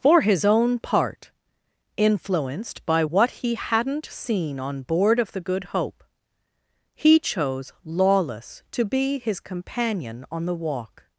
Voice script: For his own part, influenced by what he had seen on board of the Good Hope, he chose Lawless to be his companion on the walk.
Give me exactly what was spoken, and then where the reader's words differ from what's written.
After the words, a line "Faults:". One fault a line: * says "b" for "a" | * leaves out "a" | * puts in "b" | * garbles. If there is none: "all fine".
For his own part, influenced by what he hadn't seen on board of the Good Hope, he chose Lawless to be his companion on the walk.
Faults:
* says "hadn't" for "had"